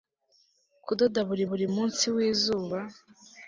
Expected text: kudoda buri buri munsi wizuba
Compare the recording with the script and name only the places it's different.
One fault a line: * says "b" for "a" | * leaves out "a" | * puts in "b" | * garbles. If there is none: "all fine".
all fine